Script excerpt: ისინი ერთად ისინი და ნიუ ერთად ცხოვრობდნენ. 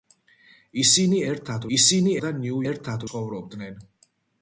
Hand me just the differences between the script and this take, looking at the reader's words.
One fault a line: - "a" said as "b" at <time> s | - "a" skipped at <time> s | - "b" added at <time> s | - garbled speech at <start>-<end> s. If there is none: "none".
none